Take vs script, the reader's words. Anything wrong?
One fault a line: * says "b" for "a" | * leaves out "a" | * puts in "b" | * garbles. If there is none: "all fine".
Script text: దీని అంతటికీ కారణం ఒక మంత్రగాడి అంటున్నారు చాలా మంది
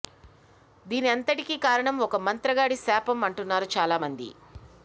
* puts in "శాపం"